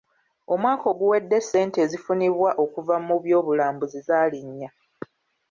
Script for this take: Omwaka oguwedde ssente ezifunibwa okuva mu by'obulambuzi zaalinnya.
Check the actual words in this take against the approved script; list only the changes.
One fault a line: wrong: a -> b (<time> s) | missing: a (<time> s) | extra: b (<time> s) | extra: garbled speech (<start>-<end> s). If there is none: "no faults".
no faults